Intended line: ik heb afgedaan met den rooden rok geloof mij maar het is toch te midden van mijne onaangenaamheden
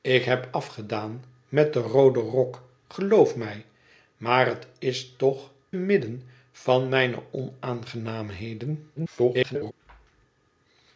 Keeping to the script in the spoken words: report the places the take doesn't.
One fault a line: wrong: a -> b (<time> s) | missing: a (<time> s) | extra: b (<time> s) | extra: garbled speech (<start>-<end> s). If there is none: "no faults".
missing: te (5.5 s)
extra: garbled speech (9.0-9.7 s)